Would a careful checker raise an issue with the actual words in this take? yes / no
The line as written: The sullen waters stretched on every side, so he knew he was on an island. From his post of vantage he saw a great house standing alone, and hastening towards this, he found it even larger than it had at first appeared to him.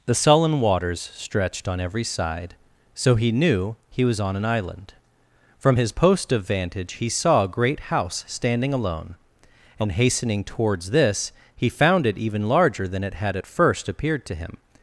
no